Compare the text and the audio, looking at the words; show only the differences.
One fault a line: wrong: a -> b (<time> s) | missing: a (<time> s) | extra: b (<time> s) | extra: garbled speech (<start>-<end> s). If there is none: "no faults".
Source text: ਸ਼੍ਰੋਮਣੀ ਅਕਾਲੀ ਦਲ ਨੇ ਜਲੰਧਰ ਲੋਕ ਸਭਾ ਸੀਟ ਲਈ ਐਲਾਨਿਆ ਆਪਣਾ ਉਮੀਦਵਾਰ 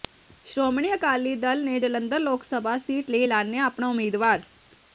no faults